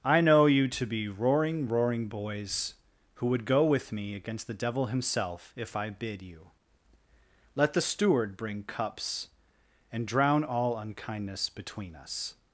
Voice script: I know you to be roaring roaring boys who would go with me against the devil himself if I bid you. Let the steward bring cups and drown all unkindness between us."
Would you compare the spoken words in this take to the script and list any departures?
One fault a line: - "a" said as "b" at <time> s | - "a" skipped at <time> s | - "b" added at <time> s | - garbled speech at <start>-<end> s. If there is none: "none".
none